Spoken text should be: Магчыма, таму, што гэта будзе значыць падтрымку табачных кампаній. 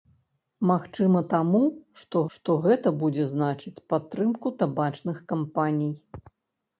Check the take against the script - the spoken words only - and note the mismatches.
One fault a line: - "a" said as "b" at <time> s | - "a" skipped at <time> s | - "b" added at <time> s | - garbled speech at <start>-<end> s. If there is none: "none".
- "што" added at 2.4 s